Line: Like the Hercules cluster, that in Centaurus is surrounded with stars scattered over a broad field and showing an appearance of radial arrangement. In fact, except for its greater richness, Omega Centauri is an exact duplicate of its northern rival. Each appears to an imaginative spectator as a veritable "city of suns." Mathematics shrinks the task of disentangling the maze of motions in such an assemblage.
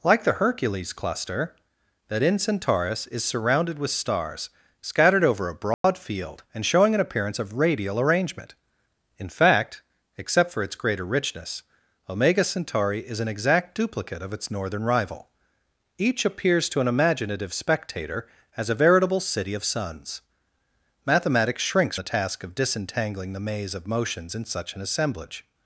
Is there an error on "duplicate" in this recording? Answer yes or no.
no